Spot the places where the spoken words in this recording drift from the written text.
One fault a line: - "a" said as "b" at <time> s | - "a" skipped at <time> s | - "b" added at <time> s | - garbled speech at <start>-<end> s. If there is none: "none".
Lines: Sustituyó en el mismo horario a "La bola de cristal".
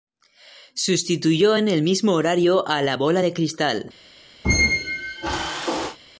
none